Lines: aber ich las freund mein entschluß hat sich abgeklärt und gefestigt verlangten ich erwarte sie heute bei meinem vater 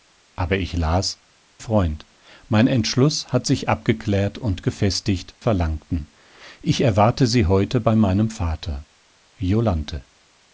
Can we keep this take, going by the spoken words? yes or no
yes